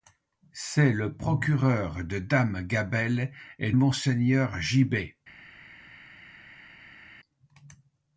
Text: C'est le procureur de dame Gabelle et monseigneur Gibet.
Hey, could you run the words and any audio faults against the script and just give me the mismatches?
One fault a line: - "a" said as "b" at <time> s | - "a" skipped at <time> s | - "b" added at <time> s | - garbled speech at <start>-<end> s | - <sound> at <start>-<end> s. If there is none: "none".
none